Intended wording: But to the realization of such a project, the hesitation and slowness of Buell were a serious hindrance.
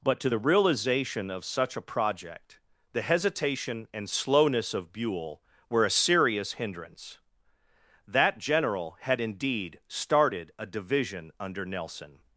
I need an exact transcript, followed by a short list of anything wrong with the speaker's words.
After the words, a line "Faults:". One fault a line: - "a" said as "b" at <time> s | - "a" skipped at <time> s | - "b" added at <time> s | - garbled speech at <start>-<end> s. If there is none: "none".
But to the realization of such a project, the hesitation and slowness of Buell were a serious hindrance. That general had indeed started a division under Nelson
Faults:
- "That general had indeed started a division under Nelson" added at 8.1 s